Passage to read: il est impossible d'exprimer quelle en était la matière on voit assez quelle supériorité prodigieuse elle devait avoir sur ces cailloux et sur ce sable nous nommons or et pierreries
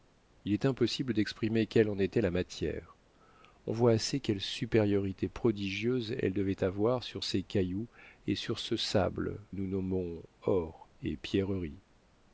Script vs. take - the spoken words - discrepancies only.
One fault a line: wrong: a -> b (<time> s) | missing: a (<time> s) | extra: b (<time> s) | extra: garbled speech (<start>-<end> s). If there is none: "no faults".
no faults